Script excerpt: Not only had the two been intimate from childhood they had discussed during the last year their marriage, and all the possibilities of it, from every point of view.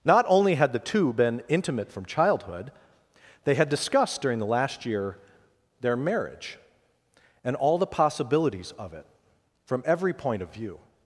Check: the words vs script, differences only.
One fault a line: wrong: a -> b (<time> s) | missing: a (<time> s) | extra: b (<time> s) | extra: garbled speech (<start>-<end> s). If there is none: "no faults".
no faults